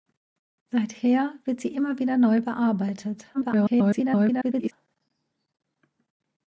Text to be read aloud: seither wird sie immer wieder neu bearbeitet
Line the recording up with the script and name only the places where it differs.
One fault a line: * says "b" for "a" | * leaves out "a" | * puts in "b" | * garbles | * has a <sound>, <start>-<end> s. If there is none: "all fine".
* garbles